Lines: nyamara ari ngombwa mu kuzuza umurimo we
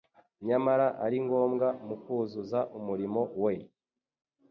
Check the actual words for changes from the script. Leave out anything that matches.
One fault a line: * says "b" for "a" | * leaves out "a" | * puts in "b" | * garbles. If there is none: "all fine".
all fine